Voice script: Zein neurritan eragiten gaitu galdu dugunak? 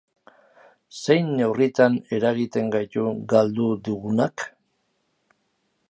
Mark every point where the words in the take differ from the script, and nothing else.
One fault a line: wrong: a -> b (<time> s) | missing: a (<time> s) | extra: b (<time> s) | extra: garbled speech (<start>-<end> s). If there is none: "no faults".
no faults